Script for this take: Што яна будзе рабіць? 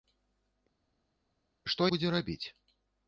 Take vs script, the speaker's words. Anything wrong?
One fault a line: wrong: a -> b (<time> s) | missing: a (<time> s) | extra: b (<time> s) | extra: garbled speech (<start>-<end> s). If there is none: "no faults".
missing: яна (1.9 s)